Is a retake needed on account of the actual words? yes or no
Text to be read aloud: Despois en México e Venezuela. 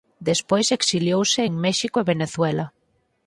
yes